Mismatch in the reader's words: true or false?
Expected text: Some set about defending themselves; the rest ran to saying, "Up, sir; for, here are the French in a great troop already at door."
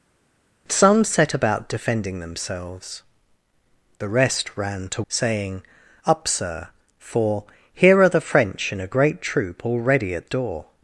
false